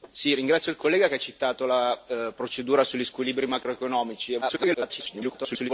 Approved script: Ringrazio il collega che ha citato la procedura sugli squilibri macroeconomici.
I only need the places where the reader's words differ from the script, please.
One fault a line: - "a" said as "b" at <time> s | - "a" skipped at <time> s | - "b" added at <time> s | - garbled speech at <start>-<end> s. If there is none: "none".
- garbled speech at 4.4-5.7 s